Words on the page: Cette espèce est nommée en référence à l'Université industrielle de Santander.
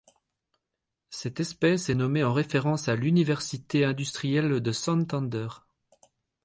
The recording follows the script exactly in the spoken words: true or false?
true